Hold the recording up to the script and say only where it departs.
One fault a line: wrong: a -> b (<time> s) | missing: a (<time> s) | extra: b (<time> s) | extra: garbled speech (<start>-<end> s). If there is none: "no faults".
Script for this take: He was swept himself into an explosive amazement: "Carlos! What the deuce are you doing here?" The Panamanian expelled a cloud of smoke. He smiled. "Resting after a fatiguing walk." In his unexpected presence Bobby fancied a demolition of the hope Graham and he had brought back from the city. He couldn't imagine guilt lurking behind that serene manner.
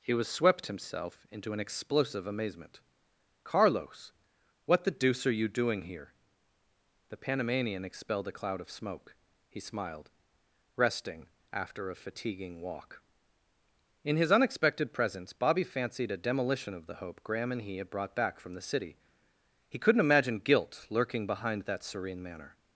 no faults